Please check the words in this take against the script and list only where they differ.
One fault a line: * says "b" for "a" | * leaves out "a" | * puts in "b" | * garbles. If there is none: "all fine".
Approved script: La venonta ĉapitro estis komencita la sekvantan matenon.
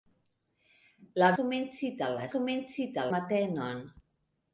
* leaves out "venonta ĉapitro estis"
* says "komencita" for "sekvantan"